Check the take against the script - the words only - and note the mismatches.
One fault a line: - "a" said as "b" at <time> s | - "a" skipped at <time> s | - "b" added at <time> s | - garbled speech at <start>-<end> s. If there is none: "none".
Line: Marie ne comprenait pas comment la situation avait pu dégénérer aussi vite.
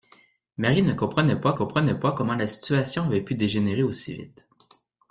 - "comprenait pas" added at 1.5 s